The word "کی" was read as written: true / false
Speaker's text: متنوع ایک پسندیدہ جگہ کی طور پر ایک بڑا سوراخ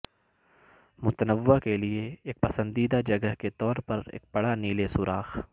false